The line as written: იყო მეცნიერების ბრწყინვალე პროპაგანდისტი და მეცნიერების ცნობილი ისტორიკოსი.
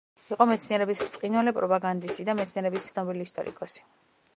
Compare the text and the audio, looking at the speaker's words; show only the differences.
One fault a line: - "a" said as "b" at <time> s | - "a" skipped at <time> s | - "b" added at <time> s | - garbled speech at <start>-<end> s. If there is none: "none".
none